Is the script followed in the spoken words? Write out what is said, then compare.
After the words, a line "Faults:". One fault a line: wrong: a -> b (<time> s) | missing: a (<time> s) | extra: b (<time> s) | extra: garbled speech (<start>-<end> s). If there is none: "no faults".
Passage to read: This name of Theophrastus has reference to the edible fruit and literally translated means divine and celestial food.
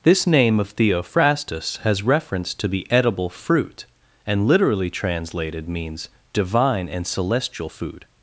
This name of Theophrastus has reference to the edible fruit and literally translated means divine and celestial food.
Faults:
no faults